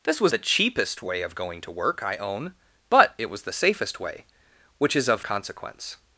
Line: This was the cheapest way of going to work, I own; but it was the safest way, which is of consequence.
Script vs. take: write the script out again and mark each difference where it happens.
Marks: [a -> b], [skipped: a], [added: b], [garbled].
This was the cheapest way of going to work, I own; but it was the safest way, which is of consequence.